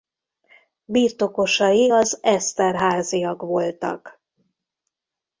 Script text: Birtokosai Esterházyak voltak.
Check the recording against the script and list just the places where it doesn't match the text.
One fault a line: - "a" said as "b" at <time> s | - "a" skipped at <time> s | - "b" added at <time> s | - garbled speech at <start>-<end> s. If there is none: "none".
- "az" added at 1.9 s